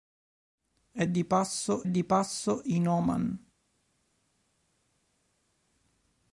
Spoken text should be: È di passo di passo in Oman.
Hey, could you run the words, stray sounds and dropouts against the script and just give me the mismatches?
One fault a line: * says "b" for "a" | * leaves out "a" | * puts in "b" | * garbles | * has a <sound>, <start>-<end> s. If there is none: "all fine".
all fine